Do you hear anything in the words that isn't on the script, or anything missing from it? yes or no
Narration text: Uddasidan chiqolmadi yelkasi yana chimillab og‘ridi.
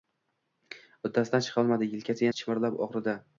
yes